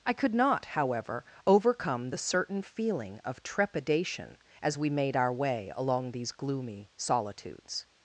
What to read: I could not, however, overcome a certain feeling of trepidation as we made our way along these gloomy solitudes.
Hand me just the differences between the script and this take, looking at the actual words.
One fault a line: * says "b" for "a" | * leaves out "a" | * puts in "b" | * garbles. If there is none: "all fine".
* says "the" for "a"